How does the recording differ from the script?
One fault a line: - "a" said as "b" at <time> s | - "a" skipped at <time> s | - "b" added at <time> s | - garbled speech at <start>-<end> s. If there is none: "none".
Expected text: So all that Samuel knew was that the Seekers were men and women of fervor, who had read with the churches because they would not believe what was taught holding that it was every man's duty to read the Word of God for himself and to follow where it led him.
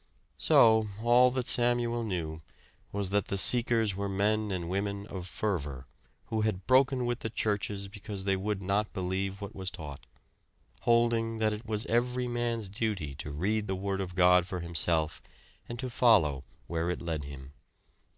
- "read" said as "broken" at 6.7 s